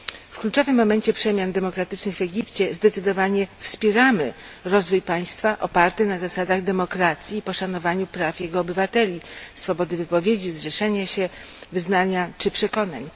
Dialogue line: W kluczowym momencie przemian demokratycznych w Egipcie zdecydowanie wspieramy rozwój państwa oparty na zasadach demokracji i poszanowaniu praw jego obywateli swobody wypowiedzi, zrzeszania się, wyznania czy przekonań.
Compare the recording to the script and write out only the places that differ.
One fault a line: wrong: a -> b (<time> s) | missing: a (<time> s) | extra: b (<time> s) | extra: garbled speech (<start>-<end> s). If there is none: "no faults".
no faults